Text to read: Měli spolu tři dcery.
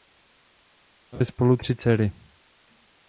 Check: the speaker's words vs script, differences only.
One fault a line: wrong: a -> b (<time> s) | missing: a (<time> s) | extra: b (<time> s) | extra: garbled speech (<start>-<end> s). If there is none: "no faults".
no faults